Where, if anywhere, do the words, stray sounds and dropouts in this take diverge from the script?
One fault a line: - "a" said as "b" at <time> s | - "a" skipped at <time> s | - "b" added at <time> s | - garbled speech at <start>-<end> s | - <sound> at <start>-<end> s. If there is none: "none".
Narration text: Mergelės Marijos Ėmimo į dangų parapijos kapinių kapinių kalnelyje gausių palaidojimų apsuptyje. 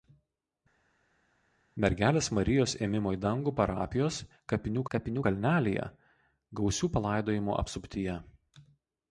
none